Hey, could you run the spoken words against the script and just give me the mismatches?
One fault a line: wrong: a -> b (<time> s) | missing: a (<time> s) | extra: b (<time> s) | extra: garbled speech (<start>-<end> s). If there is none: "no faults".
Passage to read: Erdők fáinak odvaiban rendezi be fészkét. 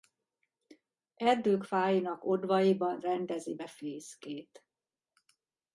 no faults